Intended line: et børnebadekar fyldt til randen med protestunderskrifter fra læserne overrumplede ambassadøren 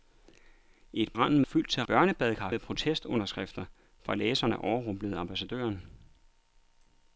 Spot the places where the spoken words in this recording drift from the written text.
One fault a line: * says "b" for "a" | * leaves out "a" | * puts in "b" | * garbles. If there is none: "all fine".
* says "randen" for "børnebadekar"
* says "børnebadekar" for "randen"